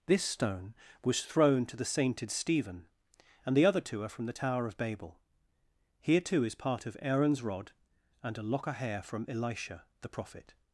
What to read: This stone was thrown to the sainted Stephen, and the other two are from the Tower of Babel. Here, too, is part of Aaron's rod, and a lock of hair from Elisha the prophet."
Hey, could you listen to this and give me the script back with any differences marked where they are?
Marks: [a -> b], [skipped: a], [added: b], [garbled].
This stone was thrown to the sainted Stephen, and the other two are from the Tower of Babel. Here, too, is part of Aaron's rod, and a lock of hair from Elisha the prophet."